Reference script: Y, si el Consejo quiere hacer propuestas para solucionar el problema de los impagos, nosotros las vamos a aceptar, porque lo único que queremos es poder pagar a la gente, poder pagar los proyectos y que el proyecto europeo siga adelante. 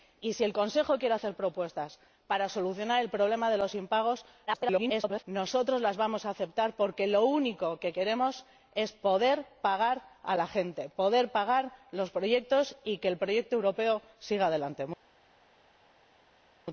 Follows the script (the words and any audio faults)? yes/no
no